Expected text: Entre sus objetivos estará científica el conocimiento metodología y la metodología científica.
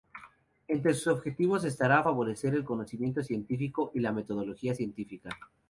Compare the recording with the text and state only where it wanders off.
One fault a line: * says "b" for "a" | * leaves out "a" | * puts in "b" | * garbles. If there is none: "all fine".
* says "favorecer" for "científica"
* says "científico" for "metodología"